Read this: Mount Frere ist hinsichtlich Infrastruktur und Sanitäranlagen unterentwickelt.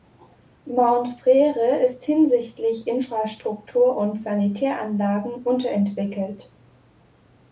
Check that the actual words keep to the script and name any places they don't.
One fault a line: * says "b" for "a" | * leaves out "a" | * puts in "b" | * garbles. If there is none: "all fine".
all fine